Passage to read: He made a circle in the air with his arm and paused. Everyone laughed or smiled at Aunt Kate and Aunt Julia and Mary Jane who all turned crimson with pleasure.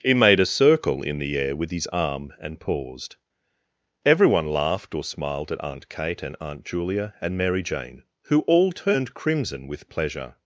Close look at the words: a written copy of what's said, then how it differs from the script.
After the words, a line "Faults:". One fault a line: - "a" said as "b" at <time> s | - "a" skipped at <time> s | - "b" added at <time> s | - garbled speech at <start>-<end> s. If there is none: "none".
He made a circle in the air with his arm and paused. Everyone laughed or smiled at Aunt Kate and Aunt Julia and Mary Jane who all turned crimson with pleasure.
Faults:
none